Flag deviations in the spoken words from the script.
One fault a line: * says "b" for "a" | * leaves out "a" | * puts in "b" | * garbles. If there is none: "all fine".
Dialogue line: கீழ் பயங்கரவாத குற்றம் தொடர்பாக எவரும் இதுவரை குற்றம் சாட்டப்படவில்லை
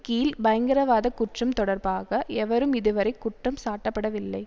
all fine